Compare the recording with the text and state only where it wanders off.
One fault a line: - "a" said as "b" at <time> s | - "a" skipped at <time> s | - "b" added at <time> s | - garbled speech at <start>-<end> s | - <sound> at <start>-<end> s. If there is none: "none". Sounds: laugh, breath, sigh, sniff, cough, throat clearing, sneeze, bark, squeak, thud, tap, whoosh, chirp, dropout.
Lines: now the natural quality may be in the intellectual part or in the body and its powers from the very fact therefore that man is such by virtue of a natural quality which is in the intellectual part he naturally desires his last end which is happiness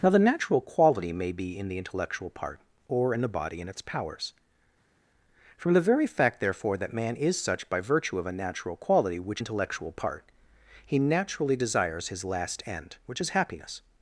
- "is in the" skipped at 9.4 s